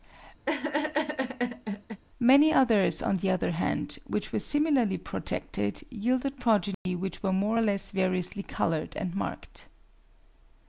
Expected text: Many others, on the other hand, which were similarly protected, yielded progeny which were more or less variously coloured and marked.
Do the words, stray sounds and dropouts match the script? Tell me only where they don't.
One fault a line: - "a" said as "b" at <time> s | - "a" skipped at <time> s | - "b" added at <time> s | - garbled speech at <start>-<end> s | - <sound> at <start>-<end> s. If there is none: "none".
- laugh at 0.5-2.0 s
- dropout at 6.7-6.9 s